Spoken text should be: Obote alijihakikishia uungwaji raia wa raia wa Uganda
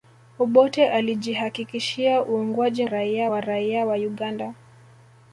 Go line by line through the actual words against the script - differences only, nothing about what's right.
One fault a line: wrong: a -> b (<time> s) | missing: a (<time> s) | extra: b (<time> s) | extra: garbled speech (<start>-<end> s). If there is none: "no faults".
no faults